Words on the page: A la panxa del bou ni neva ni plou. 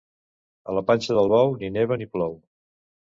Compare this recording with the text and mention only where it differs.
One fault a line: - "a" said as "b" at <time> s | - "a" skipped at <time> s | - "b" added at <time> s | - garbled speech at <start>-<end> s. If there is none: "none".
none